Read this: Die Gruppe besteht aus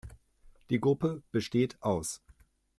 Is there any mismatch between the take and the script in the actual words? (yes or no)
no